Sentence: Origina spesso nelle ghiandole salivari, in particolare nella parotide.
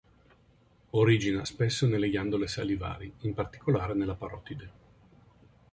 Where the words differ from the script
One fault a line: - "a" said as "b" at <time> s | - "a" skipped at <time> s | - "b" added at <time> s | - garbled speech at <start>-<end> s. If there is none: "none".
none